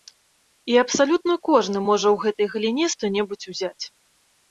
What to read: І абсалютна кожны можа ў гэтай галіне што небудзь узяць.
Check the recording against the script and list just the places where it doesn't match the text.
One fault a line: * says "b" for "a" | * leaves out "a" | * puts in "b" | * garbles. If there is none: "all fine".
all fine